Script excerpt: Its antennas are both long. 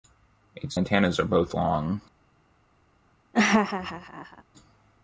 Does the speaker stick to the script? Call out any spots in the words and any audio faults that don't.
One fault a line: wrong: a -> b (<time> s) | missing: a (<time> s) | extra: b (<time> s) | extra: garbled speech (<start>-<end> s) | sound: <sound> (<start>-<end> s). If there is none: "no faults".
sound: laugh (3.3-4.4 s)